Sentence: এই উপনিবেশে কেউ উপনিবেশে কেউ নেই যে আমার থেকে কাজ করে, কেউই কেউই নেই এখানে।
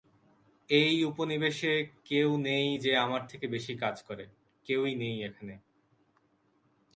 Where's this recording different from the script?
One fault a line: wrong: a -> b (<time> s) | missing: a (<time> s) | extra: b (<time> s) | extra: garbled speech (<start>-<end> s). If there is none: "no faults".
missing: উপনিবেশে কেউ (2.3 s)
extra: বেশি (3.5 s)
missing: কেউই (4.9 s)